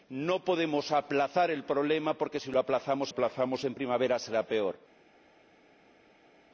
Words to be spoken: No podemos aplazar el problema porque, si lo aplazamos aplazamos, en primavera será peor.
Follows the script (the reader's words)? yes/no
yes